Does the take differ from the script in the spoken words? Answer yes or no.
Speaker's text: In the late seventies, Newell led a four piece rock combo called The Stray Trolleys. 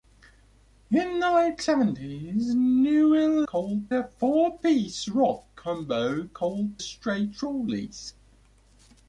yes